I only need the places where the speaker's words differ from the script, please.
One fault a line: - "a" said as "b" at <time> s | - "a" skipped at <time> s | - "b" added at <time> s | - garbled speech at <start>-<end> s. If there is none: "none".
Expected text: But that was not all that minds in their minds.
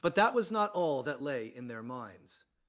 - "minds" said as "lay" at 1.2 s